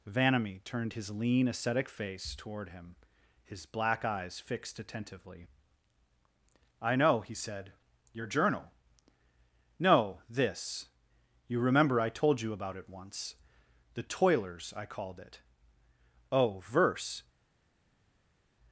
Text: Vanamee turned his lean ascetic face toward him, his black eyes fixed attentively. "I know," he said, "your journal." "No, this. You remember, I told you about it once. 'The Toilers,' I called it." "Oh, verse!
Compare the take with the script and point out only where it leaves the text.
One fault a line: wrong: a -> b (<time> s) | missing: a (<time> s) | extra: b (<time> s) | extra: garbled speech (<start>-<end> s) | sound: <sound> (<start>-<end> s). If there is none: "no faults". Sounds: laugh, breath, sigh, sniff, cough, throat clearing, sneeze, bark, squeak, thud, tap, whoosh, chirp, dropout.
no faults